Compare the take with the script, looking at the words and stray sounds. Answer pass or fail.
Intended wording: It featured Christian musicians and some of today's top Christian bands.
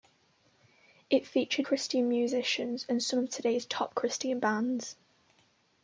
pass